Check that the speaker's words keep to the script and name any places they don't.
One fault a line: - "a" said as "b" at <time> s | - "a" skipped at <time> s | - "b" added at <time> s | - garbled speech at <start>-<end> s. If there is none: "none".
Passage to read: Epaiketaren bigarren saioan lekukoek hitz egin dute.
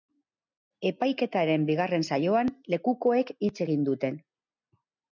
none